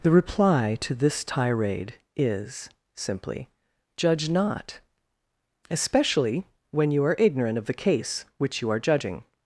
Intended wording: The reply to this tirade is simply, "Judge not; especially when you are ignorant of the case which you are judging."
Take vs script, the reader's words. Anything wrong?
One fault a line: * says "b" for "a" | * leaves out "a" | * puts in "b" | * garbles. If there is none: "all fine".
all fine